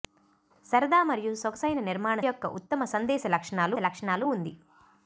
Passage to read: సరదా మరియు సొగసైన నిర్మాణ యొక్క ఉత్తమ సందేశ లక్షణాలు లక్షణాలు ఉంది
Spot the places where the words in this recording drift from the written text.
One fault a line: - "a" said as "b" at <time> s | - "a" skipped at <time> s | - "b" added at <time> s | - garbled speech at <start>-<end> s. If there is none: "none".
none